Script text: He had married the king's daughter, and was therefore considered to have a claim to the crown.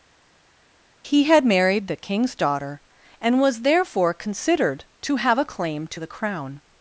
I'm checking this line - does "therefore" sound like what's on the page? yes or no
yes